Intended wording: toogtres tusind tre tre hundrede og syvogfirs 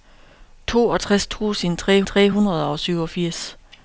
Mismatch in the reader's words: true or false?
false